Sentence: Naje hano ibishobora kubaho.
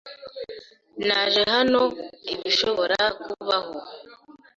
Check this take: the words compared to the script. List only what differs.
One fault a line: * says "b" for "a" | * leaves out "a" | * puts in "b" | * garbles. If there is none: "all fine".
all fine